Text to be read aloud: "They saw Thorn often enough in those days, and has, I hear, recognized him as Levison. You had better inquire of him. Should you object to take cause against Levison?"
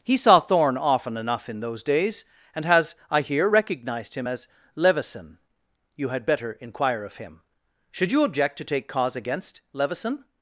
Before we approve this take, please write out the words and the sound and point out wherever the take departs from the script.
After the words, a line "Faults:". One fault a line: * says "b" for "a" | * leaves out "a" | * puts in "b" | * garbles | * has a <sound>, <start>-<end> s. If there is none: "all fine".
"He saw Thorn often enough in those days, and has, I hear, recognized him as Levison. You had better inquire of him. Should you object to take cause against Levison?"
Faults:
* says "He" for "They"